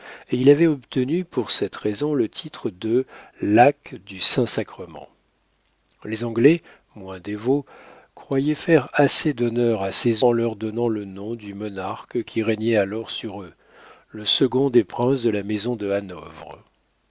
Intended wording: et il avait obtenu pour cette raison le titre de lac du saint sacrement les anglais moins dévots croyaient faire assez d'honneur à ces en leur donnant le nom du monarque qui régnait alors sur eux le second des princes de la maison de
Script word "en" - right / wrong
right